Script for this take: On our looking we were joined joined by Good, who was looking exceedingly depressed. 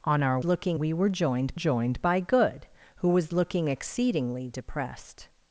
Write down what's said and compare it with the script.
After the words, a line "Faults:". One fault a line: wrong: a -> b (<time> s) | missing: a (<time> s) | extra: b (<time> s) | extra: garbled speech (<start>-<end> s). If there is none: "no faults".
On our looking we were joined joined by Good, who was looking exceedingly depressed.
Faults:
no faults